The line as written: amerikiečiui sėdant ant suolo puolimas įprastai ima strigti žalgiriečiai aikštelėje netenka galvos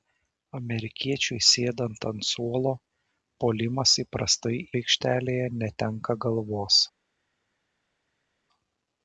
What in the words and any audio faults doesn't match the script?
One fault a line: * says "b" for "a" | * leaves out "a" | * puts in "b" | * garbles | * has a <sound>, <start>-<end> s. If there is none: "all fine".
* leaves out "ima strigti žalgiriečiai"